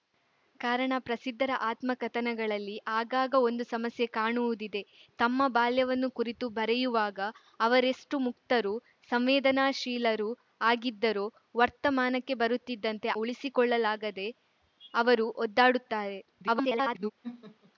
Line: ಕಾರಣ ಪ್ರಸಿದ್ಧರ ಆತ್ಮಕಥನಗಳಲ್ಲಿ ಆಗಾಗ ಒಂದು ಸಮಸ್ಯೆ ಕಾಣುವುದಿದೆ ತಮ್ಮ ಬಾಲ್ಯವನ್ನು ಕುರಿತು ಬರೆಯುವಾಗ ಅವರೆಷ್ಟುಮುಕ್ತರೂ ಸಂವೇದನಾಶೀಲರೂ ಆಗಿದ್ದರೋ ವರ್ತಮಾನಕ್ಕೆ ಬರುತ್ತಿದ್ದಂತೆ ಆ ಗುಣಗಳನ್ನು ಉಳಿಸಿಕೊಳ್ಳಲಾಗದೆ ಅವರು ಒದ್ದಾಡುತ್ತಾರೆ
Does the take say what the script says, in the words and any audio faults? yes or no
no